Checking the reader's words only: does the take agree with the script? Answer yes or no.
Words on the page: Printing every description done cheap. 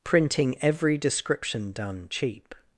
yes